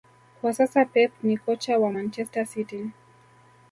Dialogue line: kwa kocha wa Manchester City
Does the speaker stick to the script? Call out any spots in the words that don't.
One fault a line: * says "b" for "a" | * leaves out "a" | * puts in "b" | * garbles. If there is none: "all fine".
* puts in "sasa Pep ni"